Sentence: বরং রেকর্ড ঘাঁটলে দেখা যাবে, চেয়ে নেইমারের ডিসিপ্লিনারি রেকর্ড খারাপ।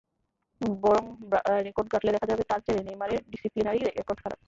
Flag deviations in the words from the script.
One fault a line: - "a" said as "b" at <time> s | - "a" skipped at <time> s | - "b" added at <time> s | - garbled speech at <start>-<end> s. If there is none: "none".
- "তাঁর" added at 2.5 s